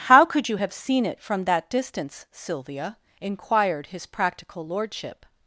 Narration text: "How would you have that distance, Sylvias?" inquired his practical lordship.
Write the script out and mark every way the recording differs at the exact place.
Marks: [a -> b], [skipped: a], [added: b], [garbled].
"How [would -> could] you have [added: seen it from] that distance, [Sylvias?" -> Sylvia] inquired his practical lordship.